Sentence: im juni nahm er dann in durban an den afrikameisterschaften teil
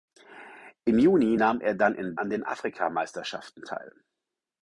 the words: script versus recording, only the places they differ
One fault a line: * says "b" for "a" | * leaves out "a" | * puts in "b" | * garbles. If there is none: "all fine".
* leaves out "durban"